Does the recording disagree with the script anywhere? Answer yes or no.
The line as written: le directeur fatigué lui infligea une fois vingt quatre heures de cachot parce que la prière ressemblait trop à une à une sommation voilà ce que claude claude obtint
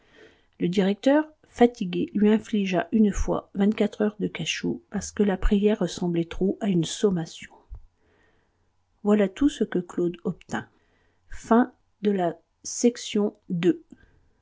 yes